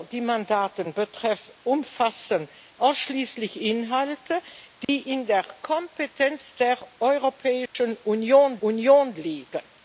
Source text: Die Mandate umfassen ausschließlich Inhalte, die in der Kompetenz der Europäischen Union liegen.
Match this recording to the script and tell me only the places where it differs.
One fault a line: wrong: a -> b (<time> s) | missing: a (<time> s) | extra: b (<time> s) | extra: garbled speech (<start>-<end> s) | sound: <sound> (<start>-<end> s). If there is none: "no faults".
sound: dropout (4.8-4.9 s)
sound: dropout (7.7-7.7 s)
extra: Union (8.6 s)